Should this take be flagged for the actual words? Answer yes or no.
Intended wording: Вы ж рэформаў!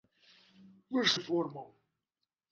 no